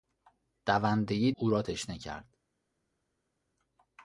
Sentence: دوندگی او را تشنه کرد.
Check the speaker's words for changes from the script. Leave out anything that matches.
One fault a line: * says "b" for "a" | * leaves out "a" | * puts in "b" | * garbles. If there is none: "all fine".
all fine